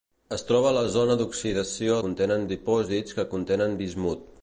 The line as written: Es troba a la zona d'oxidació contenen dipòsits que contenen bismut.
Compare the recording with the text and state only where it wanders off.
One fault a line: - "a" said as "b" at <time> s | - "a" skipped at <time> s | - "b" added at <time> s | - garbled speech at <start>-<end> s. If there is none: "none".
none